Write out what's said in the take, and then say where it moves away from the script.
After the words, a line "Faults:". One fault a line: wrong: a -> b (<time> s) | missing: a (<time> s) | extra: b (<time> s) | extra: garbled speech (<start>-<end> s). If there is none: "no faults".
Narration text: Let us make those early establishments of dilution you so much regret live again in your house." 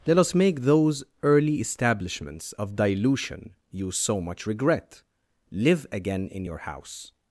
Let us make those early establishments of dilution you so much regret live again in your house."
Faults:
no faults